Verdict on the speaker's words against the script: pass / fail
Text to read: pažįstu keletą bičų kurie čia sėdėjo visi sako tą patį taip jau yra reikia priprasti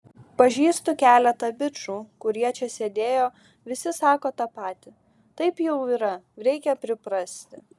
pass